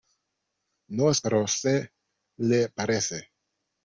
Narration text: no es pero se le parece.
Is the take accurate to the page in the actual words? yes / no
yes